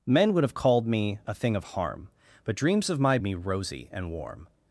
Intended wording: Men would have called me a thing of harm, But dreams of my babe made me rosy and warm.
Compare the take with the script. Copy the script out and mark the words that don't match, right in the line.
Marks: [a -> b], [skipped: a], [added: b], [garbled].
Men would have called me a thing of harm, But dreams of my [skipped: babe made] me rosy and warm.